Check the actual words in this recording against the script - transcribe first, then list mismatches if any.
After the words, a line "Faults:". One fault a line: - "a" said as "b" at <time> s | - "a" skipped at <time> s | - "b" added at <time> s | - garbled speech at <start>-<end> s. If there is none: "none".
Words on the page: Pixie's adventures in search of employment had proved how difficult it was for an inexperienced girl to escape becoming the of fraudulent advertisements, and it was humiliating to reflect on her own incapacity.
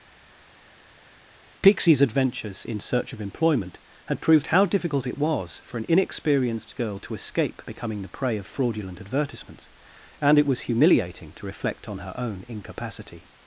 Pixie's adventures in search of employment had proved how difficult it was for an inexperienced girl to escape becoming the prey of fraudulent advertisements, and it was humiliating to reflect on her own incapacity.
Faults:
- "prey" added at 8.1 s